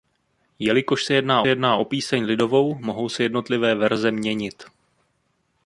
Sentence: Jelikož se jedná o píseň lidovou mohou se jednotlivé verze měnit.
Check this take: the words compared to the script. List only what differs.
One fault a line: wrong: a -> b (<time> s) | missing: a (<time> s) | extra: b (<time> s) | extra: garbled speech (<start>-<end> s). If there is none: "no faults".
extra: jedná (1.5 s)